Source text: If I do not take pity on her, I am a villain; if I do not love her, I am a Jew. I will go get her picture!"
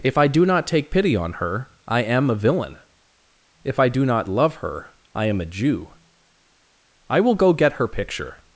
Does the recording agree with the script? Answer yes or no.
yes